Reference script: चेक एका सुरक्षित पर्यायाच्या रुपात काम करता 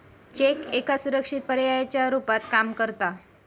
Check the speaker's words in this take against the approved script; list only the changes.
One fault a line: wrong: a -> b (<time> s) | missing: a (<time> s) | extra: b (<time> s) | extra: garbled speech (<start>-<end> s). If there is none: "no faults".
no faults